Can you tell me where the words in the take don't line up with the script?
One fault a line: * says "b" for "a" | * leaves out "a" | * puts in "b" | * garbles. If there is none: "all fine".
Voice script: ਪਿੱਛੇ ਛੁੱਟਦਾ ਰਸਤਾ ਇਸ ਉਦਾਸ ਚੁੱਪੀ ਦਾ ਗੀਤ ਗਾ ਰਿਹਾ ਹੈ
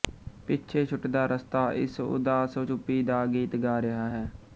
all fine